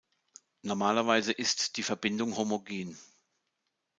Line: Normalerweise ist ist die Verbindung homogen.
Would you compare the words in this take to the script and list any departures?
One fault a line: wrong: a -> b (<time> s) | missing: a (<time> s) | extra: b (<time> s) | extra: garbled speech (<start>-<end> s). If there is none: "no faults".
missing: ist (1.8 s)